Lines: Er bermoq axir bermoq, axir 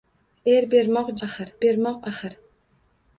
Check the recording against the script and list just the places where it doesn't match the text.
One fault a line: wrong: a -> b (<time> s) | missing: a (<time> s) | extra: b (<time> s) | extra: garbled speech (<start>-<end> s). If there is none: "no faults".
no faults